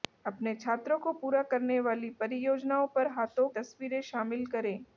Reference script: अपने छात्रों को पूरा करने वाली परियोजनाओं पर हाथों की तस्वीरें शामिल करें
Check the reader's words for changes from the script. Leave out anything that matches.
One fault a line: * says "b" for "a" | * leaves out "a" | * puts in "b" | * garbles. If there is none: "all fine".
* leaves out "की"